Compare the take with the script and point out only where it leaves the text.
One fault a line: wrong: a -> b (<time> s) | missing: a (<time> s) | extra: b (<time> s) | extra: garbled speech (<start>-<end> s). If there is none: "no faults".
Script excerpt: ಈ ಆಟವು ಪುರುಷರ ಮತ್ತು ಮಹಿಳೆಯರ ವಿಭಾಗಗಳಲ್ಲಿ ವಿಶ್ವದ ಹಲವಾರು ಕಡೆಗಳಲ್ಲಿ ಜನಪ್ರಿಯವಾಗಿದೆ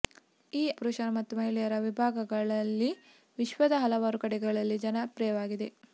missing: ಆಟವು (0.7 s)